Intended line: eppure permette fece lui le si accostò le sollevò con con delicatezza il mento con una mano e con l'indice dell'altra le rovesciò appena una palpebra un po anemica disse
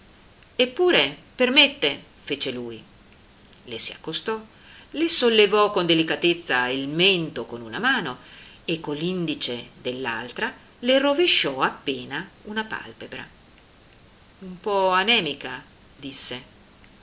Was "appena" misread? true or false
false